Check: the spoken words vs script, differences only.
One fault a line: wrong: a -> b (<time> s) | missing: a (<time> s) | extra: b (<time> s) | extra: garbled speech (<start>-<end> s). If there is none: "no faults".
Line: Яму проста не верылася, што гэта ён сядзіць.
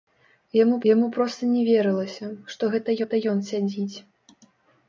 extra: яму (0.9 s)
extra: гэта (3.0 s)